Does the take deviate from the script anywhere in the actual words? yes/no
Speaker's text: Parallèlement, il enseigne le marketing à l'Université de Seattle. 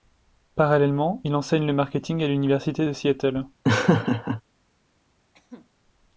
no